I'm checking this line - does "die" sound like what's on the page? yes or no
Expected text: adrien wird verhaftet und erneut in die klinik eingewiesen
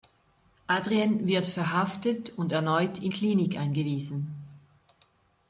no